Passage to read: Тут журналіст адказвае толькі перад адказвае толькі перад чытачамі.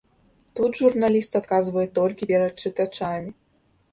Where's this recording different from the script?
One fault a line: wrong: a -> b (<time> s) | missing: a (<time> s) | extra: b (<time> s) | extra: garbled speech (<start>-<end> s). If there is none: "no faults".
missing: адказвае толькі перад (2.5 s)